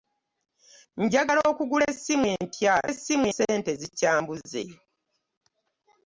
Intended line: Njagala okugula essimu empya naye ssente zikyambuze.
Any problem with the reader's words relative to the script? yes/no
yes